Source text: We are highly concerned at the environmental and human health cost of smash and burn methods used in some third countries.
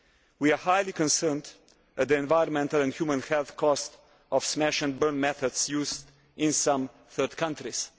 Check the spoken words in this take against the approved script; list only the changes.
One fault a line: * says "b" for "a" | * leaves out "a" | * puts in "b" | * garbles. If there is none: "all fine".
all fine